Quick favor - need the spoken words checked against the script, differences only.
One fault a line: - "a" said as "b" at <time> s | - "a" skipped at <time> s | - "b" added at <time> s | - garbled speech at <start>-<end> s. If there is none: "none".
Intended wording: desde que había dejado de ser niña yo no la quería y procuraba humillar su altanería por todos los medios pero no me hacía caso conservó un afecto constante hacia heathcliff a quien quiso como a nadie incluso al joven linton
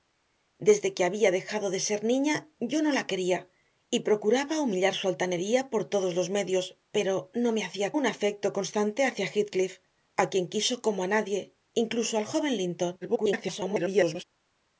- "caso conservó" skipped at 7.9 s
- garbled speech at 13.0-14.2 s